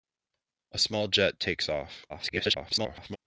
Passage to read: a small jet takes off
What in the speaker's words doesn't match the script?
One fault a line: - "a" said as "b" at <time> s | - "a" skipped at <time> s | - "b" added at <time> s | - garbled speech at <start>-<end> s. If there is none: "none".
- garbled speech at 2.1-3.2 s